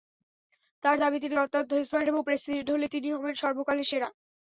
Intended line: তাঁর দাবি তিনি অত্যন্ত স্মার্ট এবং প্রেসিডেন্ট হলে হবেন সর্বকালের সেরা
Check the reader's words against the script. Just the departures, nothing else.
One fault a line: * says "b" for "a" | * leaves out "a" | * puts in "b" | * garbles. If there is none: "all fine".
* puts in "তিনি"